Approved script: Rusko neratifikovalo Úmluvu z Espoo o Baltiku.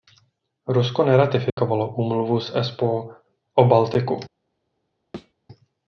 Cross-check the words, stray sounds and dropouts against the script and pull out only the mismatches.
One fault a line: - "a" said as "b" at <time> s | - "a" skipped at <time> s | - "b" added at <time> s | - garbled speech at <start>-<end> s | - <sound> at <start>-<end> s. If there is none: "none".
- dropout at 1.5-1.6 s
- thud at 5.1-5.3 s